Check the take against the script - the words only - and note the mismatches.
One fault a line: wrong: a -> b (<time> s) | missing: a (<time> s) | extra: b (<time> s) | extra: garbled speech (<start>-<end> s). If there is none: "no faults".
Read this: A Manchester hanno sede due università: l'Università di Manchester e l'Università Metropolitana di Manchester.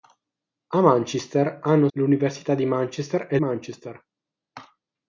missing: sede due università (1.9 s)
missing: l'Università Metropolitana di (3.4 s)